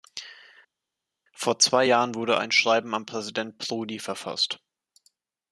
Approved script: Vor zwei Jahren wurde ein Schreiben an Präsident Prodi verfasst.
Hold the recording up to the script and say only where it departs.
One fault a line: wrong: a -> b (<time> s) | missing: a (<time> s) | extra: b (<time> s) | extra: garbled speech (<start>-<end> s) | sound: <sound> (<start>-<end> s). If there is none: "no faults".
no faults